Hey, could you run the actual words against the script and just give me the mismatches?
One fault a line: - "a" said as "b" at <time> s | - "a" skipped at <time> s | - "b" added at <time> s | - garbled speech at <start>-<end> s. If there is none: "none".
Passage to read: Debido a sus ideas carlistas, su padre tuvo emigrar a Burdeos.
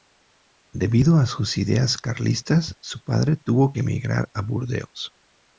- "que" added at 3.7 s